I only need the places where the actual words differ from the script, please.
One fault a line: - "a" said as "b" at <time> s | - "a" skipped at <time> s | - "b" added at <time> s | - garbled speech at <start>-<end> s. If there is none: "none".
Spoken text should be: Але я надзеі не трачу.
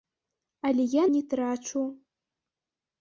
- "надзеі" skipped at 1.0 s